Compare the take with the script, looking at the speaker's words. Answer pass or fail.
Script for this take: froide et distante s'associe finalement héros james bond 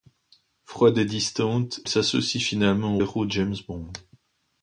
pass